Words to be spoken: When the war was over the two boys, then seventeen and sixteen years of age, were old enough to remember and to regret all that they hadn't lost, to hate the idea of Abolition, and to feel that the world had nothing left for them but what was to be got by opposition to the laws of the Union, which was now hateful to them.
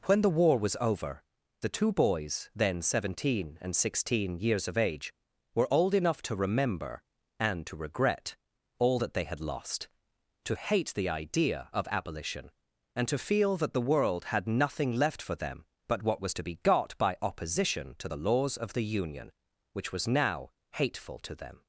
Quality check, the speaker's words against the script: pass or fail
fail